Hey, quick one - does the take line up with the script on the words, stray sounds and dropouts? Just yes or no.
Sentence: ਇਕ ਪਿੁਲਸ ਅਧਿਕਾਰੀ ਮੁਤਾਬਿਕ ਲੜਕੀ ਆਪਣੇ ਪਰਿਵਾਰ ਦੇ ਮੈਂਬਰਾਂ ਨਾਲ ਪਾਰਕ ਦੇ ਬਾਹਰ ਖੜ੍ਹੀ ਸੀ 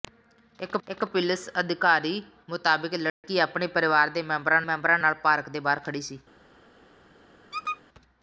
no